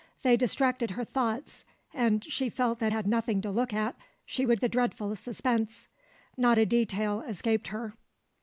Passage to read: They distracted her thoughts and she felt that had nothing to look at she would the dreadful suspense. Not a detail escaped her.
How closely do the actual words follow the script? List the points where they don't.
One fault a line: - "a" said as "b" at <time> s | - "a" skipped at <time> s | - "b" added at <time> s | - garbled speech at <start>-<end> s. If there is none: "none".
none